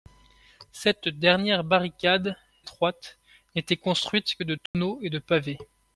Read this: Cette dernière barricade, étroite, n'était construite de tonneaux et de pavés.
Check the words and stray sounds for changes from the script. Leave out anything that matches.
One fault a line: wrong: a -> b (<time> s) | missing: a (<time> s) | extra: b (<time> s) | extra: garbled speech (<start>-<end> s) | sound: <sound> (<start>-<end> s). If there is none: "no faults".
sound: dropout (4.7-4.7 s)